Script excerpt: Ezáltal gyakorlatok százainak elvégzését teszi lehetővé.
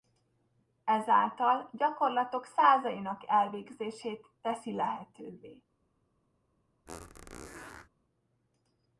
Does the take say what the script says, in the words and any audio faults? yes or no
no